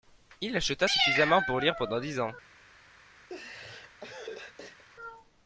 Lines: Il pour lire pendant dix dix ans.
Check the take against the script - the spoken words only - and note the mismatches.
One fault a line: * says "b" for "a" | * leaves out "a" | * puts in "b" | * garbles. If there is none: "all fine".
* puts in "acheta suffisamment"
* leaves out "dix"